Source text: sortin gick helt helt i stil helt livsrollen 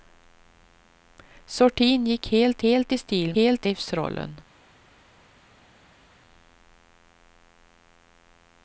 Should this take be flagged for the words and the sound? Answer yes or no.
no